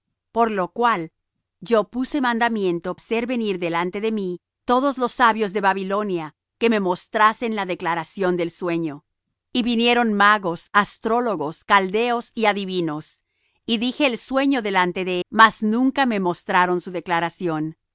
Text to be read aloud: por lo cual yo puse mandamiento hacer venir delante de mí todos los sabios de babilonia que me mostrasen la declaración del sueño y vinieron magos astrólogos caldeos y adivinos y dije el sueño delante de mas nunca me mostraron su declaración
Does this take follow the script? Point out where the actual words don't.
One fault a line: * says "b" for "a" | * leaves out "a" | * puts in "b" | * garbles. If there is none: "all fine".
all fine